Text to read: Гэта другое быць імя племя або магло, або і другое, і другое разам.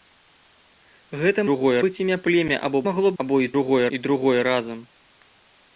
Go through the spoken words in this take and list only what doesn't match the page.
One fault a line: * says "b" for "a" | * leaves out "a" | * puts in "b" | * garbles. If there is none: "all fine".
all fine